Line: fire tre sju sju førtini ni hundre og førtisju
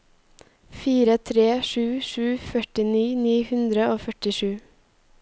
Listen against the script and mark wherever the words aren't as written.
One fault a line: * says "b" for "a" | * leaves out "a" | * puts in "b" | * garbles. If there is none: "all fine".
all fine